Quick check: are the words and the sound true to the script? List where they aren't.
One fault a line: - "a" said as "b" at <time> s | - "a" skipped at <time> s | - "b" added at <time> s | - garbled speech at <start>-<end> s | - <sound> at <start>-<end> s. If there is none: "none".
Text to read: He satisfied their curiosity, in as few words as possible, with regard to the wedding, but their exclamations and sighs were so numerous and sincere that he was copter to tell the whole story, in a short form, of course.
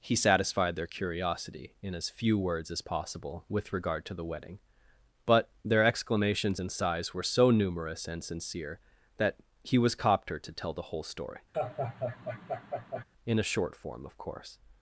- laugh at 11.5-13.0 s